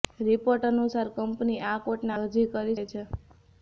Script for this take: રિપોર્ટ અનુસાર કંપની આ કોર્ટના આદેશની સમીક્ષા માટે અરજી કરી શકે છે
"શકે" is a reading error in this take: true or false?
true